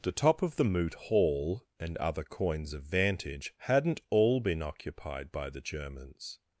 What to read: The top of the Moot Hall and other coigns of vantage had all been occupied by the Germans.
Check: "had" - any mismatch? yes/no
yes